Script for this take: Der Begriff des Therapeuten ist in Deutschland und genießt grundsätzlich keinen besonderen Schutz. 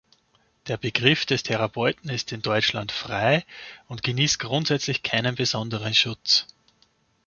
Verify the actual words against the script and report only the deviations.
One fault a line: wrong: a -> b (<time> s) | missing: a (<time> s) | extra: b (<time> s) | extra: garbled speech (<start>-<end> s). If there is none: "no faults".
extra: frei (2.9 s)